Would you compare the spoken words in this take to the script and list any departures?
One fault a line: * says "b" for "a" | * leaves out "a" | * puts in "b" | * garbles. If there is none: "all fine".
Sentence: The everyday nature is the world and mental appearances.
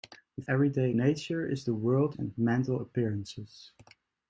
all fine